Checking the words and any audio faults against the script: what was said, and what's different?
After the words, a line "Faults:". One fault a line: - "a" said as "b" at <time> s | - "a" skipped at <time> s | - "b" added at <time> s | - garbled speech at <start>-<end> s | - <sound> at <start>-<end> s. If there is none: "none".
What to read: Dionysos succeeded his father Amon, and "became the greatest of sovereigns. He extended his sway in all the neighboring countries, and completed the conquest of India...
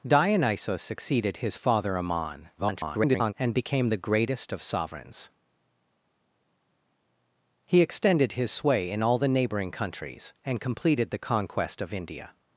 Dionysos succeeded his father Amon, [garbled] and "became the greatest of sovereigns. He extended his sway in all the neighboring countries, and completed the conquest of India...
Faults:
- garbled speech at 2.6-3.3 s